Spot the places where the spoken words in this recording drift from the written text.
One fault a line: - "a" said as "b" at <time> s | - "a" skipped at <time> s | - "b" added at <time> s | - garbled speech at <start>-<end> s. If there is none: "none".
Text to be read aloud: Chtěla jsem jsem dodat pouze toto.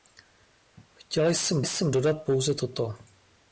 none